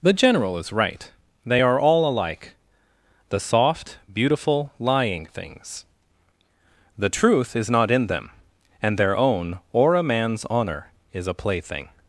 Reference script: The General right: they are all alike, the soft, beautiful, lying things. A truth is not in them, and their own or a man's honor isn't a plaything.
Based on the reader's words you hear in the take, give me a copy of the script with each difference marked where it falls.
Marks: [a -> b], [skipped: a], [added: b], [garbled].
The General [added: is] right: they are all alike, the soft, beautiful, lying things. [A -> The] truth is not in them, and their own or a man's honor [isn't -> is] a plaything.